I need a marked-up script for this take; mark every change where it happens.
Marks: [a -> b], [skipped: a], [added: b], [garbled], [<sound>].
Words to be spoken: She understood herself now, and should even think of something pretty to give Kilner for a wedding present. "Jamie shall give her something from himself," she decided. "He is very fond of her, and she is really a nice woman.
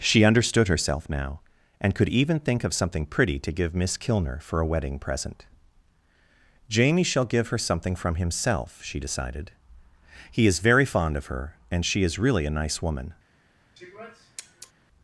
She understood herself now, and [should -> could] even think of something pretty to give [added: Miss] Kilner for a wedding present. "Jamie shall give her something from himself," she decided. "He is very fond of her, and she is really a nice woman. [sniff]